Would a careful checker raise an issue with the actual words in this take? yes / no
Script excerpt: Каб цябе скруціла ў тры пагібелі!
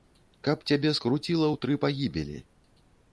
no